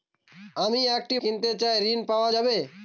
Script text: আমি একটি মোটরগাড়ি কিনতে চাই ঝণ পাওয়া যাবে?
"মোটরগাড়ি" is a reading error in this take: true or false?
true